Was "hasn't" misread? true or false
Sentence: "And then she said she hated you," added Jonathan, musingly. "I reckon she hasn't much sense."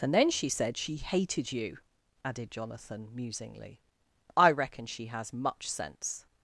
true